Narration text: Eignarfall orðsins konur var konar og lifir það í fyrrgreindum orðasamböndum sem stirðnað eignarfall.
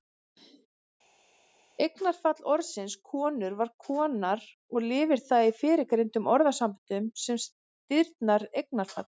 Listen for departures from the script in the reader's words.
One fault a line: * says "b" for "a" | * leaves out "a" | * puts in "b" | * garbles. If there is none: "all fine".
all fine